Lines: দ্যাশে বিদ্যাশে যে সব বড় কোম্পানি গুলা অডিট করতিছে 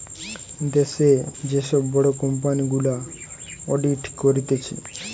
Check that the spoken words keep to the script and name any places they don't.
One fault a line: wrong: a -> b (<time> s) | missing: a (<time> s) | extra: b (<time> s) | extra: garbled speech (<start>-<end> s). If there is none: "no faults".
missing: বিদ্যাশে (1.1 s)